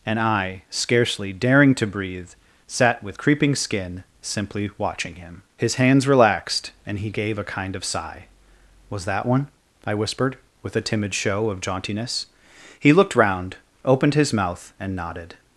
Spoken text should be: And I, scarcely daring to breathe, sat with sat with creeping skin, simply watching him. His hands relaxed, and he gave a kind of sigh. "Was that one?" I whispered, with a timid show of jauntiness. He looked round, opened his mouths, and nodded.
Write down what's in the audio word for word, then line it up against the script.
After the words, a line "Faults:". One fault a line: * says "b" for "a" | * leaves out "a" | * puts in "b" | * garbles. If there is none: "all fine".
And I, scarcely daring to breathe, sat with creeping skin, simply watching him. His hands relaxed, and he gave a kind of sigh. "Was that one?" I whispered, with a timid show of jauntiness. He looked round, opened his mouth, and nodded.
Faults:
* leaves out "sat with"
* says "mouth" for "mouths"